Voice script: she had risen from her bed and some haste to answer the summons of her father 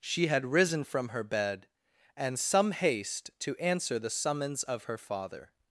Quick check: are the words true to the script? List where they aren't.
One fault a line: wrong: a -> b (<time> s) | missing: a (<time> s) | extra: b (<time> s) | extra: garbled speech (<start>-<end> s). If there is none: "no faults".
no faults